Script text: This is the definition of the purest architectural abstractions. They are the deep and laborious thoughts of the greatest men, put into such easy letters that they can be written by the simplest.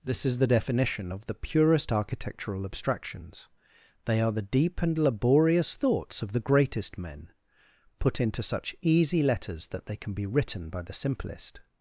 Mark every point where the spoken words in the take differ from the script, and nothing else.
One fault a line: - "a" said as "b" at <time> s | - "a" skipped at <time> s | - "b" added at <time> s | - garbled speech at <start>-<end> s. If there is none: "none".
none